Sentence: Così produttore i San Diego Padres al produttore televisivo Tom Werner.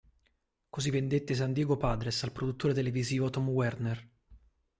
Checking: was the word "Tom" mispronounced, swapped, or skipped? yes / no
no